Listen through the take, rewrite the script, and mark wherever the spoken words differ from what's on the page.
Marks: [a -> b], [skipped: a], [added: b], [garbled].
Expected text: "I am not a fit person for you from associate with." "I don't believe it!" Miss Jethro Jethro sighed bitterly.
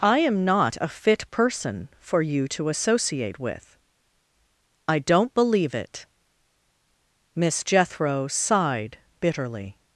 "I am not a fit person for you [from -> to] associate with." "I don't believe it!" Miss Jethro [skipped: Jethro] sighed bitterly.